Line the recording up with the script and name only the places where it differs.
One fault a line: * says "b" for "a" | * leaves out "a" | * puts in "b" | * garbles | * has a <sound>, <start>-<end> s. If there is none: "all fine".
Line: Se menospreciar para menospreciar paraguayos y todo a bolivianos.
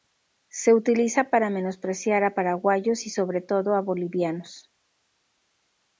* says "utiliza" for "menospreciar"
* puts in "a"
* puts in "sobre"